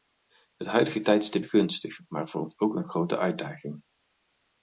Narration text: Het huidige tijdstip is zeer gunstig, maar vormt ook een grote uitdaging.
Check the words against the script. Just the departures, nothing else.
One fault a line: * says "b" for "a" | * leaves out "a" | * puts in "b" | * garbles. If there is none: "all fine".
* leaves out "is zeer"